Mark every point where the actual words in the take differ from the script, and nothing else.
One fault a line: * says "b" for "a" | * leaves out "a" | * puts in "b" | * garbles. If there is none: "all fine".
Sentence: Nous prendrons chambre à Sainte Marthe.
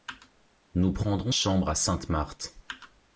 all fine